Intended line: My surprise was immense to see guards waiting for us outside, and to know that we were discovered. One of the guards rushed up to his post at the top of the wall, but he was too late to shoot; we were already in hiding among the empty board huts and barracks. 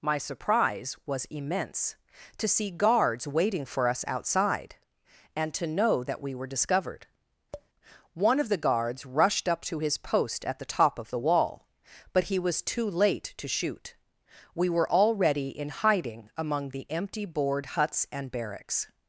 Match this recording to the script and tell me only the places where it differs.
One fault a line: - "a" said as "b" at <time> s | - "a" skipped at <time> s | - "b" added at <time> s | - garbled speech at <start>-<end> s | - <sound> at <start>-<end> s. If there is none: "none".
- tap at 7.5-7.7 s